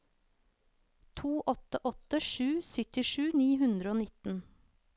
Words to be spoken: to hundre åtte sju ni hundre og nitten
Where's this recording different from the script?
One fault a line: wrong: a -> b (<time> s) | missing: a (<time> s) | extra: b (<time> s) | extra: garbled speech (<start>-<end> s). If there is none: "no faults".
wrong: hundre -> åtte (1.4 s)
extra: syttisju (2.7 s)